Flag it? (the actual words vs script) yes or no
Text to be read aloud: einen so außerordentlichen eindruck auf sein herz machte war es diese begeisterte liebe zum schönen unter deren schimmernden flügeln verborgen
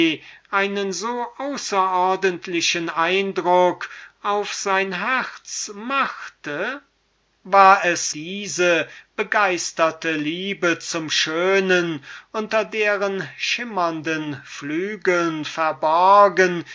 no